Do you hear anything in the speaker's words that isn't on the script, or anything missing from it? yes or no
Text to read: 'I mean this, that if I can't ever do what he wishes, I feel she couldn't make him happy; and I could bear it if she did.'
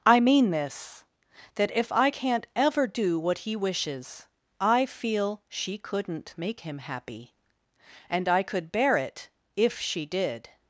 no